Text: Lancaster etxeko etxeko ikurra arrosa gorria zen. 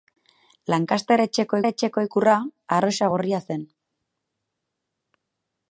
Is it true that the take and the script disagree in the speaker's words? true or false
false